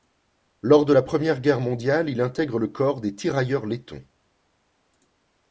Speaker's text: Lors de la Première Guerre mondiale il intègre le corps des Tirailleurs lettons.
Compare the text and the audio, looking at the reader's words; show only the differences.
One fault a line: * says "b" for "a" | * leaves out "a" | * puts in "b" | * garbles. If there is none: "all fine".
all fine